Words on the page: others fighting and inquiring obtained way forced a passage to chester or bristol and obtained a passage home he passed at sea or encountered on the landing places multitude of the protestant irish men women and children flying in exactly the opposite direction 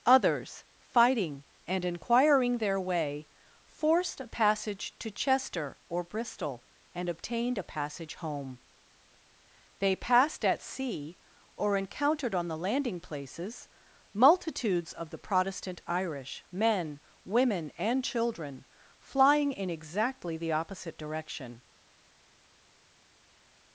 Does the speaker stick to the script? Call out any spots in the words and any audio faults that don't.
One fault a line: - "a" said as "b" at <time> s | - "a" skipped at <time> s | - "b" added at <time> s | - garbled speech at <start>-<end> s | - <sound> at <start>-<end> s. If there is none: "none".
- "obtained" said as "their" at 2.6 s
- "he" said as "they" at 9.8 s
- "multitude" said as "multitudes" at 14.1 s